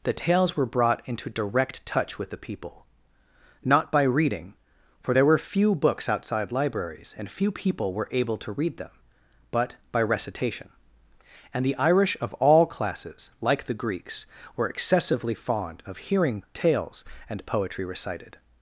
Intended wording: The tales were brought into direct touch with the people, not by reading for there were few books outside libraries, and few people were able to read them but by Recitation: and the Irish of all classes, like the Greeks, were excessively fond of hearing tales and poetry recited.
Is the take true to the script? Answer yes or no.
yes